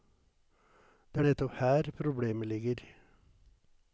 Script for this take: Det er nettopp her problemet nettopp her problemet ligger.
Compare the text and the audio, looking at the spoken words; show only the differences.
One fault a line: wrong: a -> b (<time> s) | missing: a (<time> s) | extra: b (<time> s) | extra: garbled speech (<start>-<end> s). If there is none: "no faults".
missing: nettopp her problemet (2.5 s)